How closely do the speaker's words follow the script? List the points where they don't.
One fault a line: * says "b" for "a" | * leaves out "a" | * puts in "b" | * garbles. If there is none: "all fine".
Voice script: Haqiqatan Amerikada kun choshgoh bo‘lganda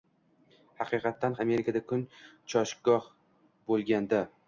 all fine